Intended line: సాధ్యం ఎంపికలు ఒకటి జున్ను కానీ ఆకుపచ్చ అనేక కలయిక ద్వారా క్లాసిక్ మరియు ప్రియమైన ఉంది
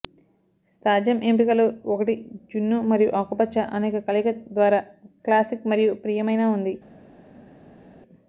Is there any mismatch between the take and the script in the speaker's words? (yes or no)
yes